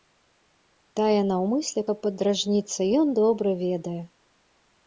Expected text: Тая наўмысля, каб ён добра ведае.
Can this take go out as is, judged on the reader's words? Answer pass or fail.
fail